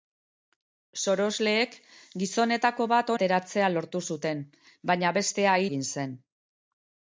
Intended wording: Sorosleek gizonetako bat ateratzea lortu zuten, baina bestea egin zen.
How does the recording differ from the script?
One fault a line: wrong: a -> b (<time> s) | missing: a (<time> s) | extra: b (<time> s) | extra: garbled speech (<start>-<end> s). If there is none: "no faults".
no faults